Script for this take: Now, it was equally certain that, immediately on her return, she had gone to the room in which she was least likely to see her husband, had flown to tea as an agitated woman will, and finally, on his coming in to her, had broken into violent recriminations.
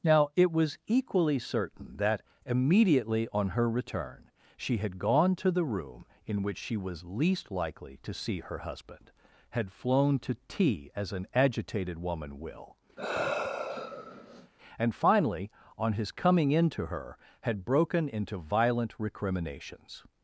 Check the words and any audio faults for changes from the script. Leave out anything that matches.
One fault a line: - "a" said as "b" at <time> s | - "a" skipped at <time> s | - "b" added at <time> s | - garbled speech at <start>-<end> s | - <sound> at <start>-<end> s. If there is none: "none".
- sigh at 13.0-14.5 s